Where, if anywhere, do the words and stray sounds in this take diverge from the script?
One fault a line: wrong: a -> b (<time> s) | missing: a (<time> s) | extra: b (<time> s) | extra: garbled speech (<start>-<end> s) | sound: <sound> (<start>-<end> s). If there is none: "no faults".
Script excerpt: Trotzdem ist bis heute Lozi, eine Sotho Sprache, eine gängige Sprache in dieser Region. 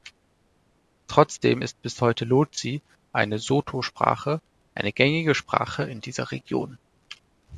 no faults